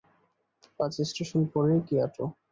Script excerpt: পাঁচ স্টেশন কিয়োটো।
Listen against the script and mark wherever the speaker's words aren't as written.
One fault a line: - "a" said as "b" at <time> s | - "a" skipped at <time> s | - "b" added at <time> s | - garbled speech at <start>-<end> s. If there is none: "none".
- "পরেই" added at 1.5 s